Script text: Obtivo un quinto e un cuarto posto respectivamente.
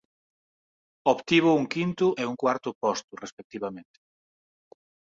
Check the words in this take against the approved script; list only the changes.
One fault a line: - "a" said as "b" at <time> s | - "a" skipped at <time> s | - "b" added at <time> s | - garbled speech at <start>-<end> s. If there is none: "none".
none